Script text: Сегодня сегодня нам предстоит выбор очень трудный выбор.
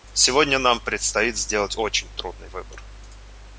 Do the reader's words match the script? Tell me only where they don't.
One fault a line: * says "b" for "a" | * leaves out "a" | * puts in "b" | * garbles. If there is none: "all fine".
* leaves out "сегодня"
* says "сделать" for "выбор"